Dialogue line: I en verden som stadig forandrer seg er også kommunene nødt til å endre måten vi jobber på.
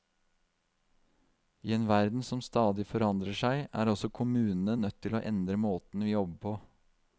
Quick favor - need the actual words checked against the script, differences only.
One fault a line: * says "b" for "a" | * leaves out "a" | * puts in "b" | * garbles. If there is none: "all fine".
all fine